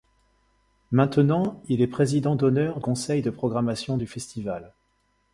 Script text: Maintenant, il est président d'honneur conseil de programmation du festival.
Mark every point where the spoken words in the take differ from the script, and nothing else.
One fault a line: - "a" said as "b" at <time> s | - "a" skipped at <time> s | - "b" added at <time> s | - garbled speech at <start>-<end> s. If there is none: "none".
none